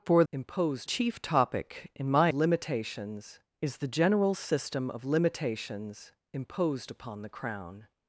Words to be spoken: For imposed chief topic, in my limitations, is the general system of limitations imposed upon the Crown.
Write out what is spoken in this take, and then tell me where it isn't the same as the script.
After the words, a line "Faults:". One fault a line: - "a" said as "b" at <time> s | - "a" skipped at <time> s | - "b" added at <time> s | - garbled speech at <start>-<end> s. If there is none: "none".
For imposed chief topic, in my limitations, is the general system of limitations imposed upon the Crown.
Faults:
none